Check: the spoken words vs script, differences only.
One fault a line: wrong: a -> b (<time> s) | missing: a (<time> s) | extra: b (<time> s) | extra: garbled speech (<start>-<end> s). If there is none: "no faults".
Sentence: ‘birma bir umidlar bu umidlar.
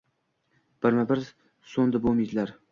wrong: umidlar -> so'ndi (1.8 s)